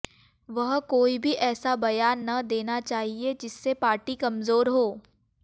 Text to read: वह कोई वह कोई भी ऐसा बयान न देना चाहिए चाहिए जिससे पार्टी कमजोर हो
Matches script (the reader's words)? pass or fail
fail